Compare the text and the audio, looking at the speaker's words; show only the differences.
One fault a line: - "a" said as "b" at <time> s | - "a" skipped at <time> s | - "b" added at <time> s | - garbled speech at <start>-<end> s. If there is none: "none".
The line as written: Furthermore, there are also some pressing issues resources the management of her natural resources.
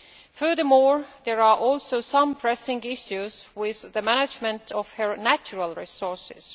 - "resources" said as "with" at 3.5 s